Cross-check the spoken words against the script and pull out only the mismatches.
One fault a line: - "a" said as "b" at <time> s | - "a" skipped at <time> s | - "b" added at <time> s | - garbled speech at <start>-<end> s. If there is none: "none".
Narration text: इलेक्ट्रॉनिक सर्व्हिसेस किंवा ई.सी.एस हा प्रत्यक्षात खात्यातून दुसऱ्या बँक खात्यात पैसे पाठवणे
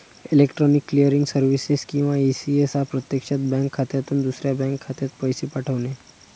- "क्लिअरिंग" added at 0.9 s
- "बँक" added at 3.5 s